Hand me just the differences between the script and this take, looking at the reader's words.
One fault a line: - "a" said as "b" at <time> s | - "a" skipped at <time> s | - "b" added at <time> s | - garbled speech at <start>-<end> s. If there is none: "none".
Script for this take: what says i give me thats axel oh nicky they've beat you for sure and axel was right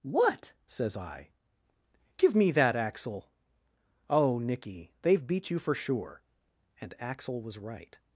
- "thats" said as "that" at 2.5 s